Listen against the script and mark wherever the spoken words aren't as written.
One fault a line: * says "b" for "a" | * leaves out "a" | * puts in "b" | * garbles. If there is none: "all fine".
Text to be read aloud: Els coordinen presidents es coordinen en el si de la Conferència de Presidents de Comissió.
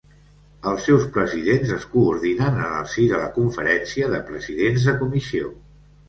* says "seus" for "coordinen"